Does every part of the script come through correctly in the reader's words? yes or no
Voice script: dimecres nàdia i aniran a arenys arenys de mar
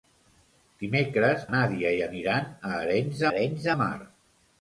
yes